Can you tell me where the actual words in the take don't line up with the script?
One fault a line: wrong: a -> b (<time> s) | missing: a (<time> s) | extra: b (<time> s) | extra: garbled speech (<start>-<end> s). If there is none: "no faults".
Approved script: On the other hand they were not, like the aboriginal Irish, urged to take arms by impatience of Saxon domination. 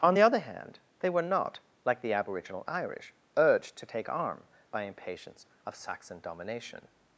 wrong: arms -> arm (4.1 s)